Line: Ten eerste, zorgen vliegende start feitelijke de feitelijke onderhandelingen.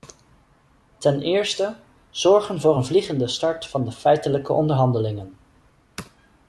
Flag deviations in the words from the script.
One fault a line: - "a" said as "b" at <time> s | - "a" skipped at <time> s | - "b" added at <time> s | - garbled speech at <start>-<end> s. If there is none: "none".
- "voor een" added at 2.6 s
- "feitelijke" said as "van" at 3.7 s